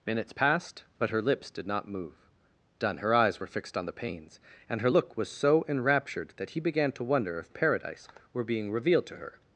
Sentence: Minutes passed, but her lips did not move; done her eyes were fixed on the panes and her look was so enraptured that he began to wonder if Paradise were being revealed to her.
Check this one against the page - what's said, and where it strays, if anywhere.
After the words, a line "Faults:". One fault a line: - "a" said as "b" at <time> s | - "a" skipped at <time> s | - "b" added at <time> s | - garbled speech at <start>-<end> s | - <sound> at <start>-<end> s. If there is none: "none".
Minutes passed, but her lips did not move; done her eyes were fixed on the panes and her look was so enraptured that he began to wonder if Paradise were being revealed to her.
Faults:
none